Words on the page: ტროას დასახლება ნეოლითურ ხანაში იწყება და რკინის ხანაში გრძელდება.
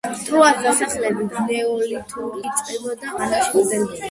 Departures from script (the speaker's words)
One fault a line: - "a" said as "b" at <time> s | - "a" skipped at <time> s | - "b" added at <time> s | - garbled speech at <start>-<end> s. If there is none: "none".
- "ხანაში" skipped at 2.4 s
- "რკინის" skipped at 3.1 s